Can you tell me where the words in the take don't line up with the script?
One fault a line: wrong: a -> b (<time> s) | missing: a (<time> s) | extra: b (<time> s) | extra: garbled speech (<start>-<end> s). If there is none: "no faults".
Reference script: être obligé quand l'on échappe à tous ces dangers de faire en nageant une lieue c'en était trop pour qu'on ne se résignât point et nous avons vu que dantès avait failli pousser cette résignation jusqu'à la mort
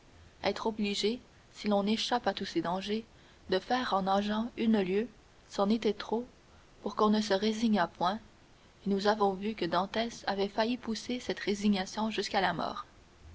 wrong: quand -> si (1.5 s)